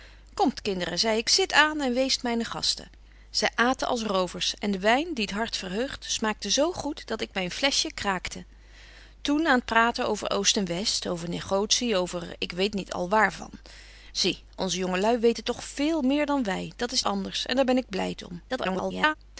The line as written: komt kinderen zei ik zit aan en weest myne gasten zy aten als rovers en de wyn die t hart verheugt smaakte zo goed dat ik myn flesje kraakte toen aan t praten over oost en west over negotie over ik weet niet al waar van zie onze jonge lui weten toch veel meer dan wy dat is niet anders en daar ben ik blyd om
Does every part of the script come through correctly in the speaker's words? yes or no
no